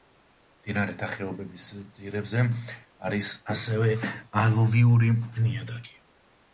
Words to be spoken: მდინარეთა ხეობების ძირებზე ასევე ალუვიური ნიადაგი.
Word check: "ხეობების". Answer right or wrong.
right